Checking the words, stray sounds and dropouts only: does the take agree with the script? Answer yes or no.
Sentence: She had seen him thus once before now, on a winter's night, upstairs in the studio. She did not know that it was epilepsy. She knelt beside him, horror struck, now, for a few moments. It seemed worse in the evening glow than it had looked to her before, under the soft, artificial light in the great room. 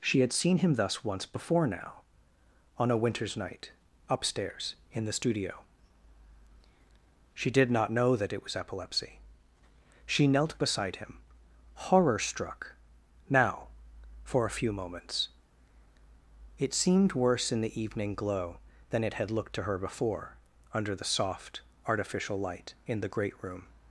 yes